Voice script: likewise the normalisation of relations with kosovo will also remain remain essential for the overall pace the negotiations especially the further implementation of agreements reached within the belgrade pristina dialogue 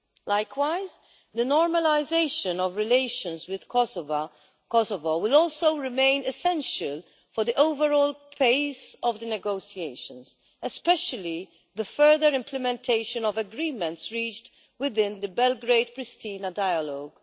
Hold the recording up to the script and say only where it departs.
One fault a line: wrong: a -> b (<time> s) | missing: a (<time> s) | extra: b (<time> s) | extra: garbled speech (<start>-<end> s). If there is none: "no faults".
missing: remain (6.2 s)
extra: of (9.0 s)